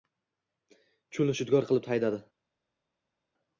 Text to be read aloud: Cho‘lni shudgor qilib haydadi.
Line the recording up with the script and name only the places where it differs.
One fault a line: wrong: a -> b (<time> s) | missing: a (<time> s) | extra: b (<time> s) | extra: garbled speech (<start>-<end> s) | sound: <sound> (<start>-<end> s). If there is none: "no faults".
no faults